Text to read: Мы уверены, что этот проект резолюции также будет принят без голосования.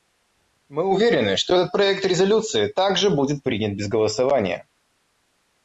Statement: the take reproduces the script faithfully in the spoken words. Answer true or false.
true